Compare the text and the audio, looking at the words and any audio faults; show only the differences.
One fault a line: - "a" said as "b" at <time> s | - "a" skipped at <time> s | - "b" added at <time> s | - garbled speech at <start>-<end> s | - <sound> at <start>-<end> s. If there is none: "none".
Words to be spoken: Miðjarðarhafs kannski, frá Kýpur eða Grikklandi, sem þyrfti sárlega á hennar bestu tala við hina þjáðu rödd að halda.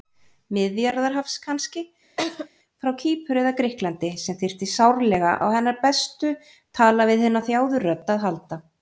- laugh at 2.2-2.5 s